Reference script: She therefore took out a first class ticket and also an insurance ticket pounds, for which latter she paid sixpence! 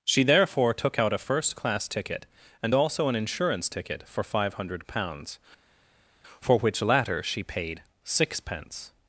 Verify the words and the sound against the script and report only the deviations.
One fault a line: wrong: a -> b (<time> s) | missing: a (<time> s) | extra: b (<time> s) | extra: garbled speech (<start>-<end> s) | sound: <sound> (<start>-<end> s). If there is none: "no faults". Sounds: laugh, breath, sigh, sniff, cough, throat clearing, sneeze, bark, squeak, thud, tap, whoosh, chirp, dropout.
extra: for five hundred (4.1 s)